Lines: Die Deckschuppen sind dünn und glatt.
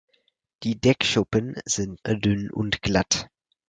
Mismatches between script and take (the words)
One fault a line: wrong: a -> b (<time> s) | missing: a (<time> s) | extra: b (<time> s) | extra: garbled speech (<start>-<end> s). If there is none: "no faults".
no faults